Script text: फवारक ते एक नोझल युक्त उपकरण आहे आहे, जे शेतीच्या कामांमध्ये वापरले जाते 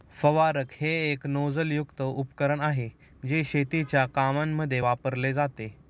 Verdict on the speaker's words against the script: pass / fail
fail